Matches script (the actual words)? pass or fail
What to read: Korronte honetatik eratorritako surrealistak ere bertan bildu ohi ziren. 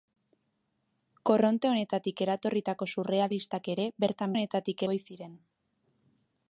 fail